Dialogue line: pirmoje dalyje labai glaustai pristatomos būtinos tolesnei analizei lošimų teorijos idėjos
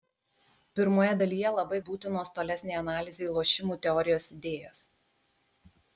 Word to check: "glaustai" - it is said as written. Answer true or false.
false